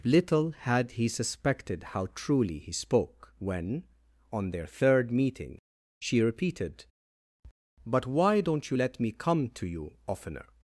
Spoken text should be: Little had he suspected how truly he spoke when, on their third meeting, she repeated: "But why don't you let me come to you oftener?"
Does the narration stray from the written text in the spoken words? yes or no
no